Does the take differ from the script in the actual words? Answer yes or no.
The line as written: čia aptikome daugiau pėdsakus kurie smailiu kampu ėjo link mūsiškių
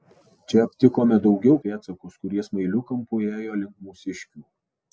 no